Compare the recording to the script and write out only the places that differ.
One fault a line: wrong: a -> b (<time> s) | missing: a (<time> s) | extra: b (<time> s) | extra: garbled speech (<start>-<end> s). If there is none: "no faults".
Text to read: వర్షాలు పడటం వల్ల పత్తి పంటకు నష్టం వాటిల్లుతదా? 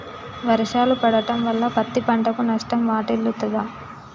no faults